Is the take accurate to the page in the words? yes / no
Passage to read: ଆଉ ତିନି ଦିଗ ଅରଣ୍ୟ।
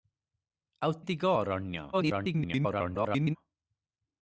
no